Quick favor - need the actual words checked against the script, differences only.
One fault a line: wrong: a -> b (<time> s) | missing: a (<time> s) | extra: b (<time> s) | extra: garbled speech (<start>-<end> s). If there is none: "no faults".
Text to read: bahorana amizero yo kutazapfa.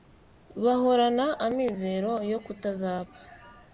no faults